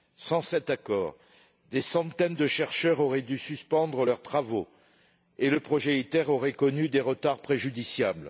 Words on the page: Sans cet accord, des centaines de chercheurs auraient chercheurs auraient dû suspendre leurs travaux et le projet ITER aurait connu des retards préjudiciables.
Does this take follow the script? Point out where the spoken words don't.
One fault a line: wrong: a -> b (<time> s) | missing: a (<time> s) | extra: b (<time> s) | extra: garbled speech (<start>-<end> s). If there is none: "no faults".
missing: chercheurs auraient (3.2 s)